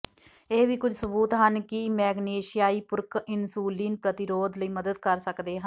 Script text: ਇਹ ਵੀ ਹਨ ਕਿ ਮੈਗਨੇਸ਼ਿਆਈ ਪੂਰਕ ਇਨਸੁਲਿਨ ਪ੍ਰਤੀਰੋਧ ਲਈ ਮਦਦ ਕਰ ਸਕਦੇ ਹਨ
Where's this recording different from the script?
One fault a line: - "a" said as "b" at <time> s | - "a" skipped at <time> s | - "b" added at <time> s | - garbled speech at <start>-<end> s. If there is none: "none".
- "ਕੁਝ ਸਬੂਤ" added at 0.8 s